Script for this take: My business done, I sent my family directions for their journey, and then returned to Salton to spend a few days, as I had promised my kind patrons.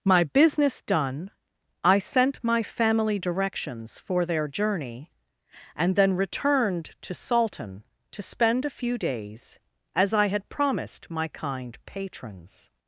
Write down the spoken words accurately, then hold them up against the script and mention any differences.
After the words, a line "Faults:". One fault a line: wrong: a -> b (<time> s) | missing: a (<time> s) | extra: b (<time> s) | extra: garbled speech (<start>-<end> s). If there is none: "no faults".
My business done, I sent my family directions for their journey, and then returned to Salton to spend a few days, as I had promised my kind patrons.
Faults:
no faults